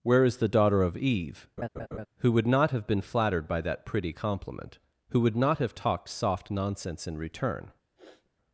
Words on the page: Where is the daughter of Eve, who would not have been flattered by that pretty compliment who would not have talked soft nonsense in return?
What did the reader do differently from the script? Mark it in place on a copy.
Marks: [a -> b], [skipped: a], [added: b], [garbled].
Where is the daughter of Eve, who would not have been flattered by that pretty compliment who would not have talked soft nonsense in return?